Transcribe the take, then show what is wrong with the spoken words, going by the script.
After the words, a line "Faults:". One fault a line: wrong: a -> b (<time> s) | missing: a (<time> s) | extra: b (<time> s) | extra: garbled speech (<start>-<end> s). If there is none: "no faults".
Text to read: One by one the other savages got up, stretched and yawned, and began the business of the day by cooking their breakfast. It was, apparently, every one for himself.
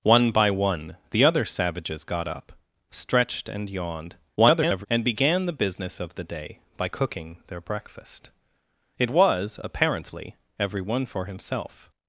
One by one the other savages got up, stretched and yawned, [garbled] and began the business of the day by cooking their breakfast. It was, apparently, every one for himself.
Faults:
extra: garbled speech (4.4-4.9 s)